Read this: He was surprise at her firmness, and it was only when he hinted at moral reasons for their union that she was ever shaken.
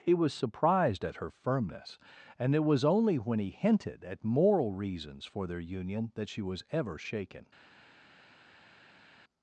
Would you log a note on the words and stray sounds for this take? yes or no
yes